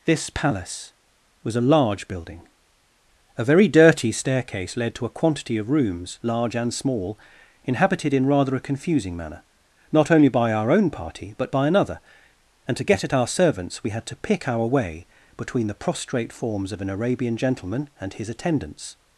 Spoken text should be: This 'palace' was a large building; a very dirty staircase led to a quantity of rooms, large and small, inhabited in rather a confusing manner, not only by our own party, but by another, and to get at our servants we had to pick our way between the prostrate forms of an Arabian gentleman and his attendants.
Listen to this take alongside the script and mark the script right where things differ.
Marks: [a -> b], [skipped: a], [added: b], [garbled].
This 'palace' was a large building; a very dirty staircase led to a quantity of rooms, large and small, inhabited in rather a confusing manner, not only by our own party, but by another, and to get at our servants we had to pick our way between the prostrate forms of an Arabian gentleman and his attendants.